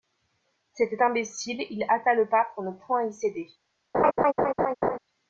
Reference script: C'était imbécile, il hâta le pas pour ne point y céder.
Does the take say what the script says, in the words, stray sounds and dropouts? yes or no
no